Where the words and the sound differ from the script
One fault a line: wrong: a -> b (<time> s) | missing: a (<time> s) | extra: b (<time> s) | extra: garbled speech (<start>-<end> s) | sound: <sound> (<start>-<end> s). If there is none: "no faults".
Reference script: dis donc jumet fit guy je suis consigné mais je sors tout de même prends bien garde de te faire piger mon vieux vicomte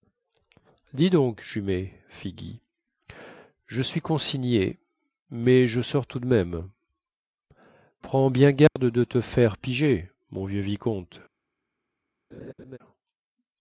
sound: dropout (8.7-8.8 s)
sound: laugh (12.3-12.8 s)